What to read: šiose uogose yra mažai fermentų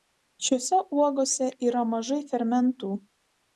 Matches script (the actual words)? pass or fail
pass